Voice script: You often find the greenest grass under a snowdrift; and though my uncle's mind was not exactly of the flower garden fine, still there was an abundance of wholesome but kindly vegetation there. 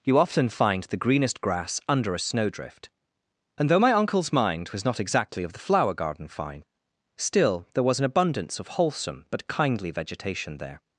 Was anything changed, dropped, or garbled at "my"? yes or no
no